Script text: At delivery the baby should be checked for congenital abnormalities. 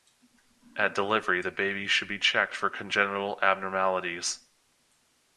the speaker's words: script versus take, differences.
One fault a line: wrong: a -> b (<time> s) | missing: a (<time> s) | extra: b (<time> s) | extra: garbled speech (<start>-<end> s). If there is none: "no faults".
no faults